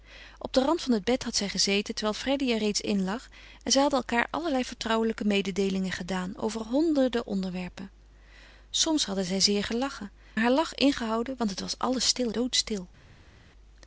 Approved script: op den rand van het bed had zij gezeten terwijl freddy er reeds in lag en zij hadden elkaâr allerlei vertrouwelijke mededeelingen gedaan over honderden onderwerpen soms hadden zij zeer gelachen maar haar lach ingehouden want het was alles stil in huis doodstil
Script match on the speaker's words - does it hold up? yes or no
no